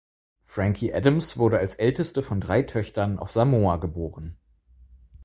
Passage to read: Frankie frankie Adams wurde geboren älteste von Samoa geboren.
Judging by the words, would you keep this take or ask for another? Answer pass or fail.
fail